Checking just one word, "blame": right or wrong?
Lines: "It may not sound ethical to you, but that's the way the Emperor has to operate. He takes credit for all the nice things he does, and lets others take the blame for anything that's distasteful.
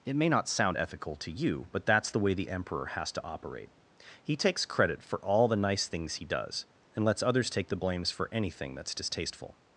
wrong